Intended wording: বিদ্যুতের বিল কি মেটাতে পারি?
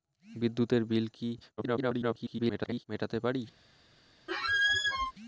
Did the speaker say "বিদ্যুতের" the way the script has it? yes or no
yes